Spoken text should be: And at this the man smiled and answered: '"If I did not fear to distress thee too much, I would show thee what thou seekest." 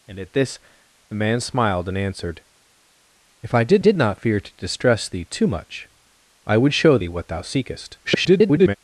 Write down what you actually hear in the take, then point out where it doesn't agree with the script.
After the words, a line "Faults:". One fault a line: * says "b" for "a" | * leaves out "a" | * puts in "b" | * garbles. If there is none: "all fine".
And at this the man smiled and answered: '"If I did did not fear to distress thee too much, I would show thee what thou seekest." [garbled]
Faults:
* puts in "did"
* garbles